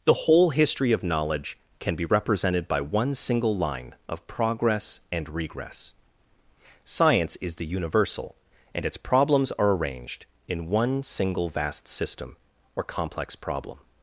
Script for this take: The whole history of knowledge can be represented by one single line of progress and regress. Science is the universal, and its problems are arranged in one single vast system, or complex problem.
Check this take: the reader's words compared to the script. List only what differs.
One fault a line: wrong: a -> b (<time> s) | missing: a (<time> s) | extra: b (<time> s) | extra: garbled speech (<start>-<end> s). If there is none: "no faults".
no faults